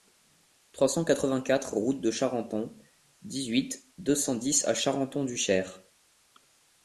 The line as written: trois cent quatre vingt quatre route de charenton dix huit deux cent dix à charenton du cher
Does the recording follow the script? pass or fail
pass